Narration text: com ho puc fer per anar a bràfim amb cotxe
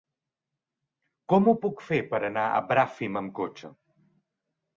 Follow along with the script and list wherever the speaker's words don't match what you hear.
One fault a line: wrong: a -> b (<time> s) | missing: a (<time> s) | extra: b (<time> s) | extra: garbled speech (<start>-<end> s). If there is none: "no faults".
no faults